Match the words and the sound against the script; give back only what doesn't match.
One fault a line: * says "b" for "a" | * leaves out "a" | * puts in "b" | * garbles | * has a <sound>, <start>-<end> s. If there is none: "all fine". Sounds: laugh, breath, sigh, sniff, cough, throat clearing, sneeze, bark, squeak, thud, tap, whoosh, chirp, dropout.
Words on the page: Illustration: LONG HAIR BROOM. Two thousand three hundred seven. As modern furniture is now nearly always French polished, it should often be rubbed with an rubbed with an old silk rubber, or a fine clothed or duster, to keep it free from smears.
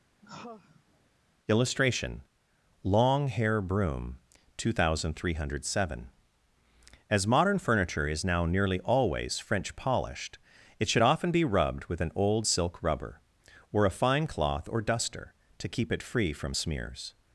* has a sigh, 0.2-1.1 s
* leaves out "rubbed with an"
* says "cloth" for "clothed"